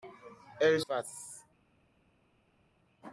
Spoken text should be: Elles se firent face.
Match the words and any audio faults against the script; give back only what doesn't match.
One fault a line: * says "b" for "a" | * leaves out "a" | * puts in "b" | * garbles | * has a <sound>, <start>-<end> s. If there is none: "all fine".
* leaves out "se firent"